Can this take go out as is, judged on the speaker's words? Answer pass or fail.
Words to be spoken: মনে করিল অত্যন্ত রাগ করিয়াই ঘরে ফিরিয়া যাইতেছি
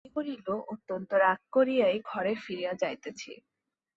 pass